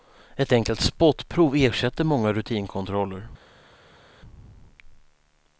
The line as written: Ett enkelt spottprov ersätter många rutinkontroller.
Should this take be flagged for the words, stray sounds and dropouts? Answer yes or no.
no